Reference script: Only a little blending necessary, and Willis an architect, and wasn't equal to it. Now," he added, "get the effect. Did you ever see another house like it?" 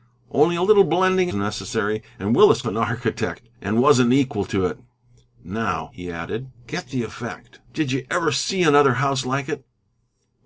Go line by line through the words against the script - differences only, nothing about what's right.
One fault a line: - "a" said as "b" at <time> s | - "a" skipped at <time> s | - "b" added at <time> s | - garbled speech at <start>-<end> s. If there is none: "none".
none